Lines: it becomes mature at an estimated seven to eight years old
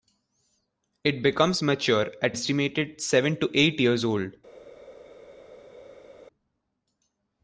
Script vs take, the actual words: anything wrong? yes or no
yes